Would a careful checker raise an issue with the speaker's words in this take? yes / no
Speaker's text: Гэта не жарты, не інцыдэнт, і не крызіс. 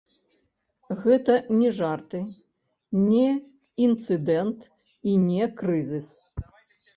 no